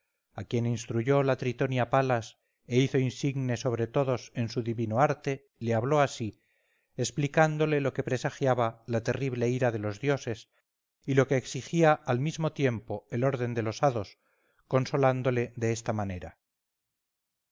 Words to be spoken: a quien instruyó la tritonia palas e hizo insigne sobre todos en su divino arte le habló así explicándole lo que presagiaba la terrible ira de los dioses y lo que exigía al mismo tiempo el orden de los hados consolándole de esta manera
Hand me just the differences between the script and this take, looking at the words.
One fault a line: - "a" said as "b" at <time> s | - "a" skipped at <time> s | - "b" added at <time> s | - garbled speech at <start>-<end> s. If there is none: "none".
none